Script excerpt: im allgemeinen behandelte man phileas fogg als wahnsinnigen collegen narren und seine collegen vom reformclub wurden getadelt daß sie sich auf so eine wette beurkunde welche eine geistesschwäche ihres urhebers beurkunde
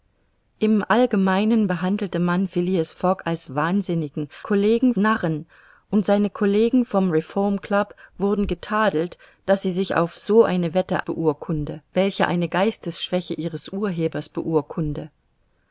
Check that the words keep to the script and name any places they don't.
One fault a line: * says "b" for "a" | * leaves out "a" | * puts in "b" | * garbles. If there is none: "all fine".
all fine